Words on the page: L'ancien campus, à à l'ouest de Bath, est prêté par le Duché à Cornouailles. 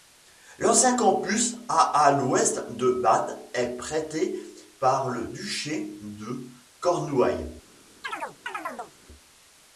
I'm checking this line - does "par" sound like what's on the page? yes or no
yes